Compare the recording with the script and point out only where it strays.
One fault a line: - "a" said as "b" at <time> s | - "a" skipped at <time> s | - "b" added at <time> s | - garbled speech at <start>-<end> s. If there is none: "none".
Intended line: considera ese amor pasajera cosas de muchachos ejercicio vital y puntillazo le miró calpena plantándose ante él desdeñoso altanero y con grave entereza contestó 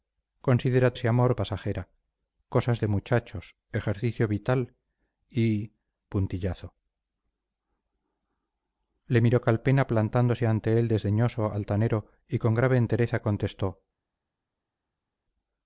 none